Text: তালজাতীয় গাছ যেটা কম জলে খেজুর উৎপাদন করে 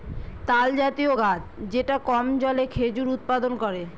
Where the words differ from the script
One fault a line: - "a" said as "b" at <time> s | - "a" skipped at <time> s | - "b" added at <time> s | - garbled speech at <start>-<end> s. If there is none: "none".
none